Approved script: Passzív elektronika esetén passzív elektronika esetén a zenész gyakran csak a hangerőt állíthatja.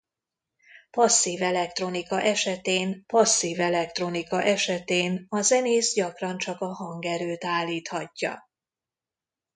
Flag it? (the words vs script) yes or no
no